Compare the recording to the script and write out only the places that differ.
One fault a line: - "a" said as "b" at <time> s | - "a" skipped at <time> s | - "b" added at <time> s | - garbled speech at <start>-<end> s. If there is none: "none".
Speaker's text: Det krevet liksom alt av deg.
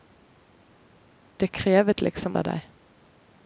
- "alt" skipped at 2.4 s